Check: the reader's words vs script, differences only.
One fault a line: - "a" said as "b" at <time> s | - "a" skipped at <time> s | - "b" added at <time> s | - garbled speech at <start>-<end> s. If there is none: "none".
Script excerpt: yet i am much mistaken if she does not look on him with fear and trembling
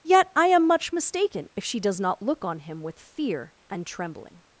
none